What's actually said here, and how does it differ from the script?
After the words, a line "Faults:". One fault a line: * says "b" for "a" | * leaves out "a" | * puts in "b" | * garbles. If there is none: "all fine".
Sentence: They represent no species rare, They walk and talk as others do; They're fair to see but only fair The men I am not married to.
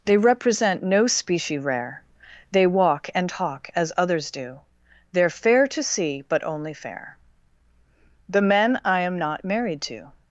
They represent no specie rare, They walk and talk as others do; They're fair to see but only fair The men I am not married to.
Faults:
* says "specie" for "species"